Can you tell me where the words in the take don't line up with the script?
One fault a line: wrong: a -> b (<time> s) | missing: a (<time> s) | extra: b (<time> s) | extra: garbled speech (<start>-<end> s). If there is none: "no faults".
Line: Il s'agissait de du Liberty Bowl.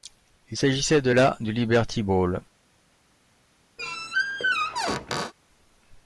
extra: la (1.1 s)